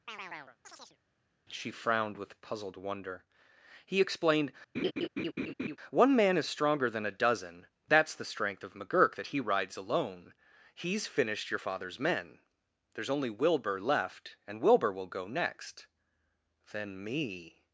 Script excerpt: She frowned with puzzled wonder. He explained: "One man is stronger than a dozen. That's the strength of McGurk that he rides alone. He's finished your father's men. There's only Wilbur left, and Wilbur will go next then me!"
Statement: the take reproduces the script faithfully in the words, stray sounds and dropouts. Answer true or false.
false